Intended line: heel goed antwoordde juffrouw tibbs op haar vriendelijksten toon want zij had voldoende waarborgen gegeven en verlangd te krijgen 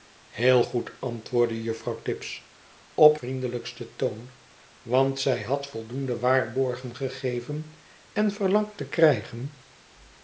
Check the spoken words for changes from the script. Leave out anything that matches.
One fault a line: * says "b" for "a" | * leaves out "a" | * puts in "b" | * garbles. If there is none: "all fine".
* leaves out "haar"